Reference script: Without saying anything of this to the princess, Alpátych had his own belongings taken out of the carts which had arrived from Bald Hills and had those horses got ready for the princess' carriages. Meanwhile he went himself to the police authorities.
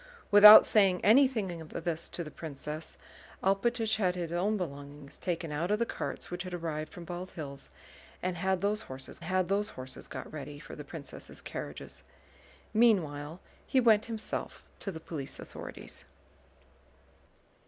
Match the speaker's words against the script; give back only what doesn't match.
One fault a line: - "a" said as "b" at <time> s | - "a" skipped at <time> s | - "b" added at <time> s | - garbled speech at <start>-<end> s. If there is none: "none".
- "had those horses" added at 9.2 s